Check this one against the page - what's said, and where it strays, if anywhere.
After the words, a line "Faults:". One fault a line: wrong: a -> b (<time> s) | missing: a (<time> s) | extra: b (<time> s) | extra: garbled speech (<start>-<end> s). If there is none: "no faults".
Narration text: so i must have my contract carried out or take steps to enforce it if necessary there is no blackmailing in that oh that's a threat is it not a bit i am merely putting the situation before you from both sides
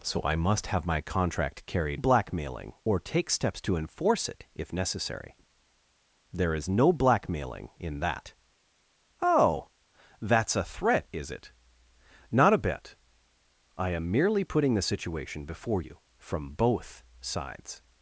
so i must have my contract carried blackmailing or take steps to enforce it if necessary there is no blackmailing in that oh that's a threat is it not a bit i am merely putting the situation before you from both sides
Faults:
wrong: out -> blackmailing (1.9 s)